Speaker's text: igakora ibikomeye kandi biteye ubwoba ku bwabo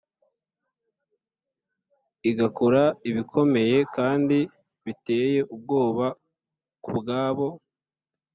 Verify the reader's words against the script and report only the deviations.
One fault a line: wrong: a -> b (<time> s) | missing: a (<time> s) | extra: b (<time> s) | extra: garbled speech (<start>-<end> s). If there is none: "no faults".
no faults